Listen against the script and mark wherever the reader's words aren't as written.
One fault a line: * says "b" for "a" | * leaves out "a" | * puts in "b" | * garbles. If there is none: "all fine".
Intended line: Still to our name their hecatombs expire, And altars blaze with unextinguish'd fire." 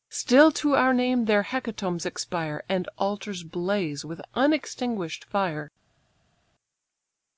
all fine